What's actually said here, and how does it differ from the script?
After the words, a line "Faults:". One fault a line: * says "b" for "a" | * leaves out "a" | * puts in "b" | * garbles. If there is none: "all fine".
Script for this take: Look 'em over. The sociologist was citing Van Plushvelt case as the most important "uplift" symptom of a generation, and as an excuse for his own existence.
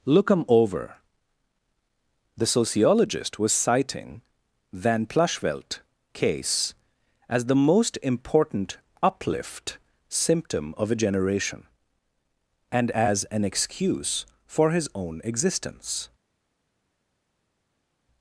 Look 'em over. The sociologist was citing Van Plushvelt case as the most important "uplift" symptom of a generation, and as an excuse for his own existence.
Faults:
all fine